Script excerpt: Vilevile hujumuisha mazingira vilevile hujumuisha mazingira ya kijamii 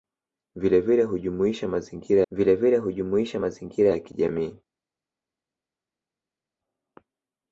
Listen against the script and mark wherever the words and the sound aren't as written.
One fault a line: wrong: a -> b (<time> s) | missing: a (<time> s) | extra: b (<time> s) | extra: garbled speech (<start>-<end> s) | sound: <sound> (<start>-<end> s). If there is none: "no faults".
no faults